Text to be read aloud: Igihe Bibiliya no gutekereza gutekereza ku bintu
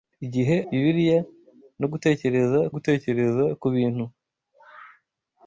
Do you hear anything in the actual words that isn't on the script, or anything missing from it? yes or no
no